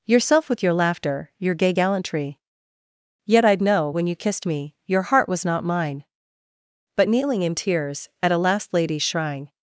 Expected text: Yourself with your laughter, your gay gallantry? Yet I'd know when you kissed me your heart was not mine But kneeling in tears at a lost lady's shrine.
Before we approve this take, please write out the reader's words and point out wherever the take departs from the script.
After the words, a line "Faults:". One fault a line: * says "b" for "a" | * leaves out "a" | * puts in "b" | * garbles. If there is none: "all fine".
Yourself with your laughter, your gay gallantry? Yet I'd know when you kissed me your heart was not mine But kneeling in tears at a last lady's shrine.
Faults:
* says "last" for "lost"